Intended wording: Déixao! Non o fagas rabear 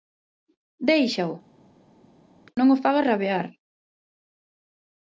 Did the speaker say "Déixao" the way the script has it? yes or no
yes